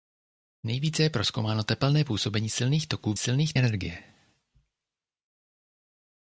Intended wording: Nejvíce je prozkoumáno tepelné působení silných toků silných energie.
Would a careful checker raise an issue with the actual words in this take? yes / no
no